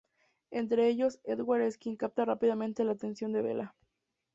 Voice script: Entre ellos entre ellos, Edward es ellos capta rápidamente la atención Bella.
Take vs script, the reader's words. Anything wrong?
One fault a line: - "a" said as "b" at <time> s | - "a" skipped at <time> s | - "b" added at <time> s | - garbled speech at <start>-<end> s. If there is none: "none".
- "entre ellos" skipped at 1.2 s
- "ellos" said as "quien" at 1.8 s
- "de" added at 3.3 s